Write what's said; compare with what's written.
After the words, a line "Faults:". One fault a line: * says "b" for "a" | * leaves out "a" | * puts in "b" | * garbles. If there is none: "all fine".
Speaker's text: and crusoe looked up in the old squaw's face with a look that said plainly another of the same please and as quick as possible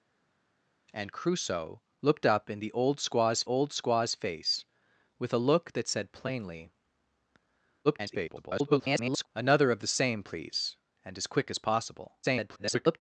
and crusoe looked up in the old squaw's old squaw's face with a look that said plainly [garbled] another of the same please and as quick as possible [garbled]
Faults:
* puts in "old squaw's"
* garbles
* garbles